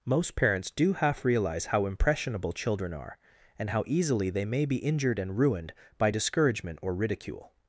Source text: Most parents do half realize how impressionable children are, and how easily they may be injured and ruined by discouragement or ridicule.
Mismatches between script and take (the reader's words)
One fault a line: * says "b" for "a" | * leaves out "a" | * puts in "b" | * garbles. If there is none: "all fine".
all fine